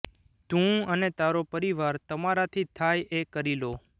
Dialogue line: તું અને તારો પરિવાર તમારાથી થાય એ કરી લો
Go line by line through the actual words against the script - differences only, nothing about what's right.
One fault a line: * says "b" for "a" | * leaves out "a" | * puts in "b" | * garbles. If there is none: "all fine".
all fine